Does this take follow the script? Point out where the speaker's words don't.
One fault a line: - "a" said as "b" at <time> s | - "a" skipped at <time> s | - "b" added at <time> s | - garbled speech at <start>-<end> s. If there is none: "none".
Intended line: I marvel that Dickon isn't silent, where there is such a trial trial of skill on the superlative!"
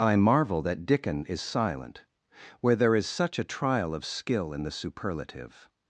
- "isn't" said as "is" at 1.2 s
- "trial" skipped at 3.9 s
- "on" said as "in" at 4.5 s